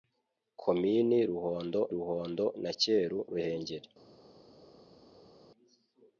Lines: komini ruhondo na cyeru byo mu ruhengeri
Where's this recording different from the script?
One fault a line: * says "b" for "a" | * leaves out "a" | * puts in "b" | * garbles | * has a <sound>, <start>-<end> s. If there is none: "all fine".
* puts in "ruhondo"
* leaves out "byo mu"